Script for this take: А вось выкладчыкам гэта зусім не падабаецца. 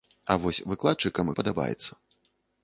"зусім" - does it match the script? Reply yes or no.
no